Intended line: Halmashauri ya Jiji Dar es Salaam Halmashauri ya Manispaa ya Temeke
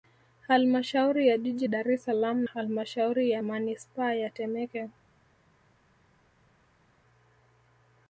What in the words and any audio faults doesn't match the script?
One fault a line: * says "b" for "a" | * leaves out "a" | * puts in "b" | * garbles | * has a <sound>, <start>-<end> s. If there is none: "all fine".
all fine